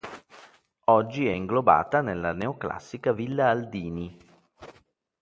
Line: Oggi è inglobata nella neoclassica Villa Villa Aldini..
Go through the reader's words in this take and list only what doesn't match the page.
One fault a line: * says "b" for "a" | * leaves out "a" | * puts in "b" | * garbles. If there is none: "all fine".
* leaves out "Villa"